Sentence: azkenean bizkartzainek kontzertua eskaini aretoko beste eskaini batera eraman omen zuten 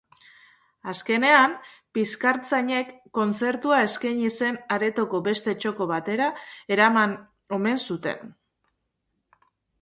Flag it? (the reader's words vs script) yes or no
yes